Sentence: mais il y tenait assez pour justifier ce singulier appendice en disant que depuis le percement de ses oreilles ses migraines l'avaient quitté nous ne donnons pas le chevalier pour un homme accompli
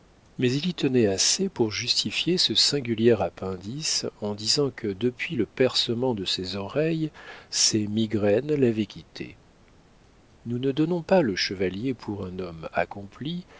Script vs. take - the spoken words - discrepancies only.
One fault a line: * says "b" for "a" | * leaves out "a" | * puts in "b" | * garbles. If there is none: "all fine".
all fine